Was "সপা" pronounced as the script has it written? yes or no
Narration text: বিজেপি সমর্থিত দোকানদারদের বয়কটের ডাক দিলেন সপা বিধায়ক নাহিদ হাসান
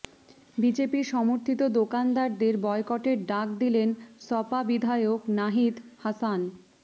yes